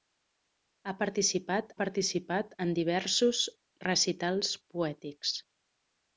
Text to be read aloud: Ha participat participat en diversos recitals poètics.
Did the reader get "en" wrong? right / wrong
right